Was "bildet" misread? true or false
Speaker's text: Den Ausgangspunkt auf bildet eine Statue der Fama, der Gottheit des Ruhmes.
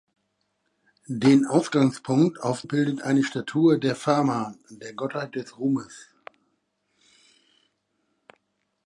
false